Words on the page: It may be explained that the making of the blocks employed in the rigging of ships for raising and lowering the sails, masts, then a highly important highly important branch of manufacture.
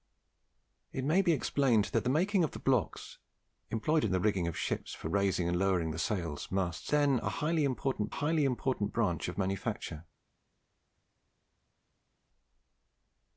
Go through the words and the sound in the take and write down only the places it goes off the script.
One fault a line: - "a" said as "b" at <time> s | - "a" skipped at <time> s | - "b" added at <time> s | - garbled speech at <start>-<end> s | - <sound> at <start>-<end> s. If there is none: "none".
none